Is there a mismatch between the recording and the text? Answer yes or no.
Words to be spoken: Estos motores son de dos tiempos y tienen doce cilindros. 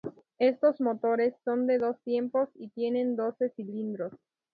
no